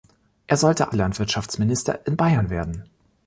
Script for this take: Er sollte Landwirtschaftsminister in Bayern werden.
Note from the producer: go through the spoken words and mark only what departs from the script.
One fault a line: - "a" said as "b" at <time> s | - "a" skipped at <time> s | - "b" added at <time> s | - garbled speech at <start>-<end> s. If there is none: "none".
none